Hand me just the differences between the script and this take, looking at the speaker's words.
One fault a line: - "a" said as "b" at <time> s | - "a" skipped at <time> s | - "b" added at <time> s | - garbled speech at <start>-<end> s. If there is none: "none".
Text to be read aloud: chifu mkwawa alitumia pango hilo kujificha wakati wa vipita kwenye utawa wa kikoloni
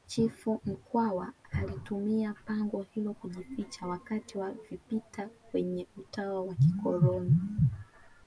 none